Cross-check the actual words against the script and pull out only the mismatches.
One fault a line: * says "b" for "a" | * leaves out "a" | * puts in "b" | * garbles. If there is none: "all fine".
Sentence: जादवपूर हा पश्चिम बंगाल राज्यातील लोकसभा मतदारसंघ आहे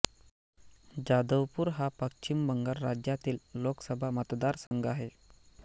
all fine